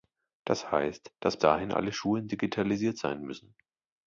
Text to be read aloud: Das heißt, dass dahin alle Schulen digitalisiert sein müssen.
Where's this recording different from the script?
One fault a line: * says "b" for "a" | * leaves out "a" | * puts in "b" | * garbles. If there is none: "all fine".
all fine